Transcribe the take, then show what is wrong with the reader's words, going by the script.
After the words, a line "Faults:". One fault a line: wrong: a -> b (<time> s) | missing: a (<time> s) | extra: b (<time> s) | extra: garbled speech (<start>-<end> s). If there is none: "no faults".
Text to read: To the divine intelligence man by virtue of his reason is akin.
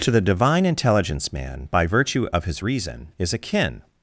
To the divine intelligence man by virtue of his reason is akin.
Faults:
no faults